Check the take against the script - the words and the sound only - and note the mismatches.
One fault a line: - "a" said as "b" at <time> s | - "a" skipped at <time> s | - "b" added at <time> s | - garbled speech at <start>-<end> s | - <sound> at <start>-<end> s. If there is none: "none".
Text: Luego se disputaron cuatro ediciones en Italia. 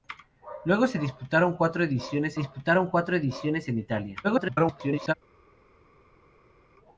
- "disputaron cuatro ediciones" added at 2.3 s
- garbled speech at 4.2-5.1 s